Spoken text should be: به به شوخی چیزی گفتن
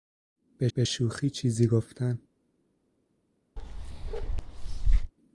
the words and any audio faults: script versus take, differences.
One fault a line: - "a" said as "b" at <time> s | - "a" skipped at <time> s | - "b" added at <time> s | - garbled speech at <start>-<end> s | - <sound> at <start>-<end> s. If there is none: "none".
- bark at 3.6-5.1 s